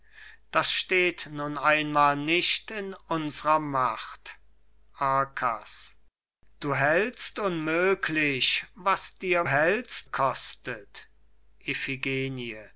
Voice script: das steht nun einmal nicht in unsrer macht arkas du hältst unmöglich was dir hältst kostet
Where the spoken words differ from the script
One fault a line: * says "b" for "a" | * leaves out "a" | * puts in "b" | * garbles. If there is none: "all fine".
all fine